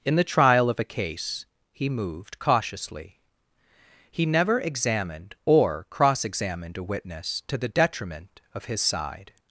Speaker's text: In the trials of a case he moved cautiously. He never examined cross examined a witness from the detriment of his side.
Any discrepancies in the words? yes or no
yes